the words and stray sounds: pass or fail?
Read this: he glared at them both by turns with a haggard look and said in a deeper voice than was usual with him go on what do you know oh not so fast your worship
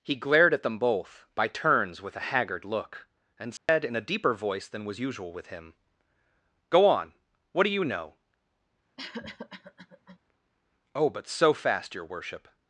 fail